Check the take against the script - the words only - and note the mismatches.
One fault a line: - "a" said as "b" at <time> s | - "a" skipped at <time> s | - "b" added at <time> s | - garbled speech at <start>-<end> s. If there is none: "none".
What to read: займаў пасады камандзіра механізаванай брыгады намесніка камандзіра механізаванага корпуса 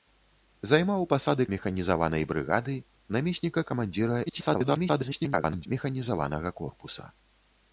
- "камандзіра" skipped at 1.4 s
- garbled speech at 4.3-5.7 s